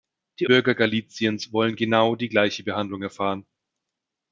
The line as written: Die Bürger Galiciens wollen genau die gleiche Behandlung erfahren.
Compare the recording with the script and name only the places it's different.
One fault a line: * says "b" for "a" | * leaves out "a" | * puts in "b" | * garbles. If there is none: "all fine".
all fine